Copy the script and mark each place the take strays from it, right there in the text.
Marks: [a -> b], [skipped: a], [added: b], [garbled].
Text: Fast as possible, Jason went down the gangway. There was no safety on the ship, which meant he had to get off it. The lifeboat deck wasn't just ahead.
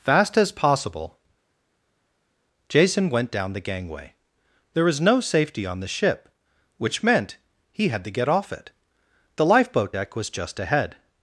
Fast as possible, Jason went down the gangway. There was no safety on the ship, which meant he had to get off it. The lifeboat deck [wasn't -> was] just ahead.